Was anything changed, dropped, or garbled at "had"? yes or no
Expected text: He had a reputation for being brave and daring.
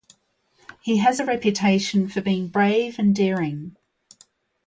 yes